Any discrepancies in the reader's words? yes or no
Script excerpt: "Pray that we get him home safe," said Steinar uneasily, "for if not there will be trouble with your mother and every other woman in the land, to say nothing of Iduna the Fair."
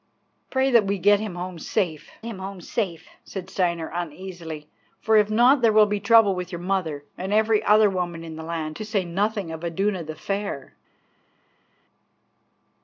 yes